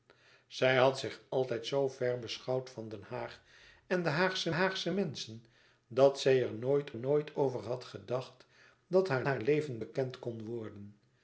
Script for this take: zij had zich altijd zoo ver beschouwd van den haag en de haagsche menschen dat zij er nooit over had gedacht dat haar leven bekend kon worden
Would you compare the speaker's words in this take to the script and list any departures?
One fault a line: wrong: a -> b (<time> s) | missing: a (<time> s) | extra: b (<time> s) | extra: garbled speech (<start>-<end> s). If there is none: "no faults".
extra: haagsche (4.5 s)
extra: nooit (7.0 s)
extra: haar (9.2 s)